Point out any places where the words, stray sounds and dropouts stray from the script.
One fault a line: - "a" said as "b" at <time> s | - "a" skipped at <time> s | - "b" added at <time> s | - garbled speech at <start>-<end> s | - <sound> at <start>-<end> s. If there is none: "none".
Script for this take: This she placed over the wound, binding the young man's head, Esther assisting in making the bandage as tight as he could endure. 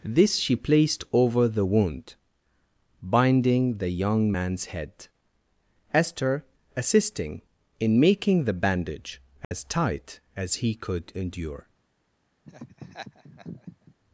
- dropout at 9.4-9.5 s
- laugh at 12.5-14.0 s